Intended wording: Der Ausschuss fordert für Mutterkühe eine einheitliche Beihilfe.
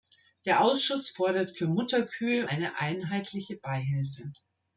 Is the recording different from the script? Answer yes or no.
no